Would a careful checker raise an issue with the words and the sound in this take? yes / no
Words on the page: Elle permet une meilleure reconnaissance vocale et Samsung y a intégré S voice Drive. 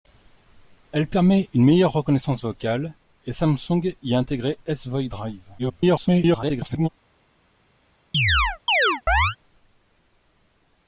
yes